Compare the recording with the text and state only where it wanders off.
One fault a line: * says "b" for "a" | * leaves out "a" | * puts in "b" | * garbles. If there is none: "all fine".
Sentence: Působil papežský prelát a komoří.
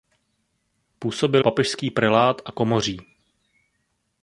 all fine